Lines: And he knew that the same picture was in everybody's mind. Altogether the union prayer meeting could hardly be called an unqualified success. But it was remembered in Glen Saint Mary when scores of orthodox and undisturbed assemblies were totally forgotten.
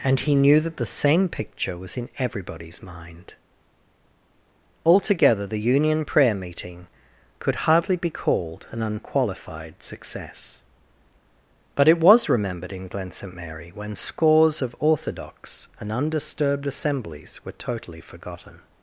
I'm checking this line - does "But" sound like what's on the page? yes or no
yes